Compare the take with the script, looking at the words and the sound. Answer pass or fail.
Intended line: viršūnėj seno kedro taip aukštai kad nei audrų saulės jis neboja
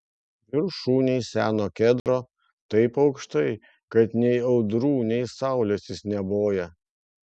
fail